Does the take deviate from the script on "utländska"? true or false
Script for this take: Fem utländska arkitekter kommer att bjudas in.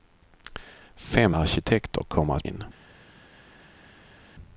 true